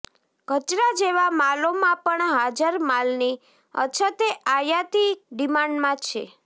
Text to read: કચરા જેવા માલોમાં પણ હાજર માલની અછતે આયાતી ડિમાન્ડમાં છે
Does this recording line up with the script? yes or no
yes